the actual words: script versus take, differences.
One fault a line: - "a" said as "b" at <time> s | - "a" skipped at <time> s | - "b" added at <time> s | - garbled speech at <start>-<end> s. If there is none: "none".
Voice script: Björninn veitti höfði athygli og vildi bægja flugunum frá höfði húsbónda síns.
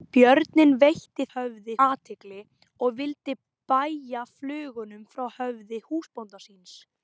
none